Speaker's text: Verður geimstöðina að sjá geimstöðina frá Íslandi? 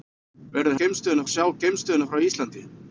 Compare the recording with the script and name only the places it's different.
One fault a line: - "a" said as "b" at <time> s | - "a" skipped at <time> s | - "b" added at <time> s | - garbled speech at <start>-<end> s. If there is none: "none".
none